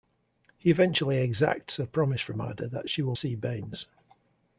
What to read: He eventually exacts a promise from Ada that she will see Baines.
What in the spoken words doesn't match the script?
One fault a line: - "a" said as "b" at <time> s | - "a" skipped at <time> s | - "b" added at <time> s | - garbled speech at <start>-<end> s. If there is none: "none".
none